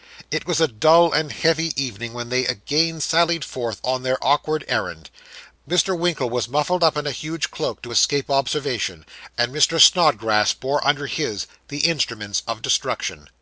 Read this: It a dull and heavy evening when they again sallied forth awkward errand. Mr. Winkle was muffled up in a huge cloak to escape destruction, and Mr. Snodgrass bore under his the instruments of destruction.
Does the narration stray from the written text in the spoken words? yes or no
yes